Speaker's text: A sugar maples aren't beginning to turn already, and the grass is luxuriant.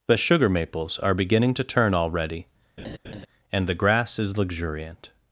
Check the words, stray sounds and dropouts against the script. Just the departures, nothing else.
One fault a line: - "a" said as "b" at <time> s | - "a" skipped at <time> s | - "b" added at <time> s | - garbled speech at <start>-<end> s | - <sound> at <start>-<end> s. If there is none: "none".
- "A" said as "The" at 0.1 s
- "aren't" said as "are" at 1.0 s
- laugh at 2.8-3.3 s